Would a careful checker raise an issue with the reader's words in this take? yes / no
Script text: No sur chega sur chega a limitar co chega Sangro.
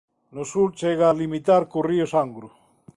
yes